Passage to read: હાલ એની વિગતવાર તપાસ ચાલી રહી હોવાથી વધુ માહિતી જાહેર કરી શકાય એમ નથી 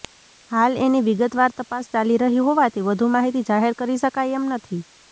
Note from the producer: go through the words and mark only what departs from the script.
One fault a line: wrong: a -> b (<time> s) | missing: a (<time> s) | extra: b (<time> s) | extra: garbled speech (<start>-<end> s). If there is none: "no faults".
no faults